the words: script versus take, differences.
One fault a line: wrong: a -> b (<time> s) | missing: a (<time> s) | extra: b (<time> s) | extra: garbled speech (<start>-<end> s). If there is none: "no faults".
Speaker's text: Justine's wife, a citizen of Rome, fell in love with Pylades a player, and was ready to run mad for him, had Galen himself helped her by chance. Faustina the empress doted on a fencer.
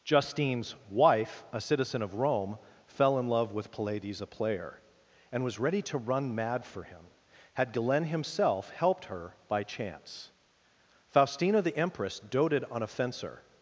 no faults